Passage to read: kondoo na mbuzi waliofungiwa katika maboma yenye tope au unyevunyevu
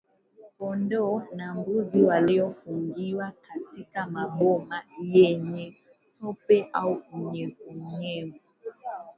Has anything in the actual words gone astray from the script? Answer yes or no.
no